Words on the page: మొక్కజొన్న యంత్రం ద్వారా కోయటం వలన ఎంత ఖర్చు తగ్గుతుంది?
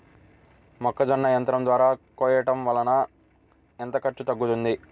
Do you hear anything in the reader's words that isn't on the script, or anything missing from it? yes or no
no